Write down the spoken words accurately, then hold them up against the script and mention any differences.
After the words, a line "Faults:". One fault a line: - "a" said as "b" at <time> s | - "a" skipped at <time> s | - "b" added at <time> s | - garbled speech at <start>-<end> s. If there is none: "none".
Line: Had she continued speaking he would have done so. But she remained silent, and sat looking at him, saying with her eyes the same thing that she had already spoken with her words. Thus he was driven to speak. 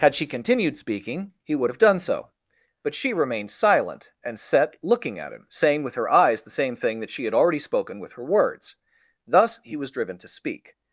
Had she continued speaking he would have done so. But she remained silent, and set looking at him, saying with her eyes the same thing that she had already spoken with her words. Thus he was driven to speak.
Faults:
- "sat" said as "set" at 4.4 s